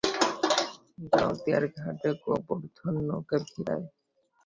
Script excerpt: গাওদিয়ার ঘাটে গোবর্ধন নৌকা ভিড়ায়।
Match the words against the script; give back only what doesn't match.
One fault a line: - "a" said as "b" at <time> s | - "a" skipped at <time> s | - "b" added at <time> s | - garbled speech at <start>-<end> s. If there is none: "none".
none